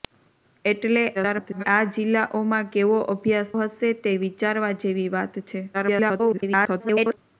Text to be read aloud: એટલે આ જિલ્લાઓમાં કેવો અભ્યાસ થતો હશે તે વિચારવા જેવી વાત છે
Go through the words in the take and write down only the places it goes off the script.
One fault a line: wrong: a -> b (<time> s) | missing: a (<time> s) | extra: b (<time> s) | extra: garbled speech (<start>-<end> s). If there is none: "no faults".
extra: garbled speech (1.1-1.6 s)
missing: થતો (3.5 s)
extra: garbled speech (5.7-7.2 s)